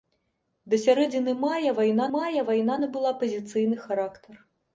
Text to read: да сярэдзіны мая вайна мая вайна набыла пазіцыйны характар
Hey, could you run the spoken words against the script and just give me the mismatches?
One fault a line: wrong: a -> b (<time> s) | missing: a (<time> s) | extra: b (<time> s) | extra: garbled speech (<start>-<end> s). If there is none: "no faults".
no faults